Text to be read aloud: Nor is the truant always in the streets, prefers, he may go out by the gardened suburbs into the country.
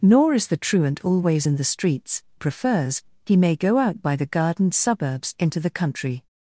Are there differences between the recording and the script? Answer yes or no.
no